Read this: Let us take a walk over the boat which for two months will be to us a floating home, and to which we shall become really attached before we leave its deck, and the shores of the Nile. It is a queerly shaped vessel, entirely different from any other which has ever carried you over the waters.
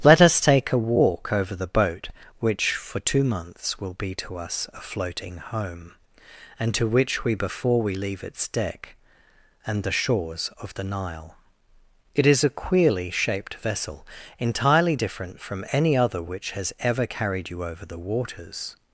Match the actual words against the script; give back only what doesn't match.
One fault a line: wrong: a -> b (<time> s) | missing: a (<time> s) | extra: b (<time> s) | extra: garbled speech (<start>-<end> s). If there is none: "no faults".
missing: shall become really attached (7.3 s)